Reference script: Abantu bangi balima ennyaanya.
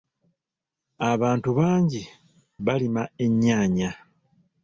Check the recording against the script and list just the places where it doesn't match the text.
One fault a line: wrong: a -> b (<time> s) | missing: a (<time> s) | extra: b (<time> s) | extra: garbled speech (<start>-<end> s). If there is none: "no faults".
no faults